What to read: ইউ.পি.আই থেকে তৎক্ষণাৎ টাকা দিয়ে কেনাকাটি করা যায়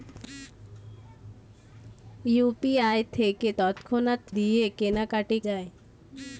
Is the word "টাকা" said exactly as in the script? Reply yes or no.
no